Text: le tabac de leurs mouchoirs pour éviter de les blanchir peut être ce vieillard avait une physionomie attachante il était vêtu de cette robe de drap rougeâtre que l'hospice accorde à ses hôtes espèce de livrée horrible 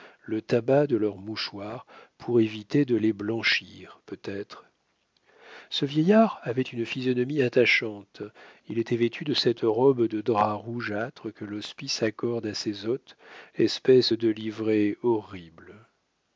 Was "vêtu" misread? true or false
false